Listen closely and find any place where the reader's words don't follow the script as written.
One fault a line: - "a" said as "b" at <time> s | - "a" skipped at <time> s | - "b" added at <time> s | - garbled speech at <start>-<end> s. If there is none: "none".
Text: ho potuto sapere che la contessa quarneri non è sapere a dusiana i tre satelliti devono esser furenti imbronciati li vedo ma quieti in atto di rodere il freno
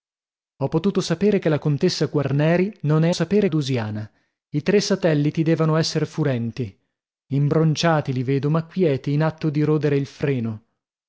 none